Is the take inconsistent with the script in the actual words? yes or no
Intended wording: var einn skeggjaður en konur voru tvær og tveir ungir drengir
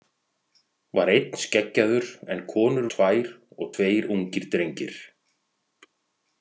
yes